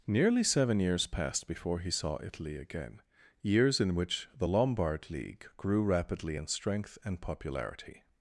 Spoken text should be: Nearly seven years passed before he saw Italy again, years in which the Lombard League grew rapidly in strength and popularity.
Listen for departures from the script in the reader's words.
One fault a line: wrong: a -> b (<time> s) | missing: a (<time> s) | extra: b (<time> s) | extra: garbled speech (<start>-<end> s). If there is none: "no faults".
no faults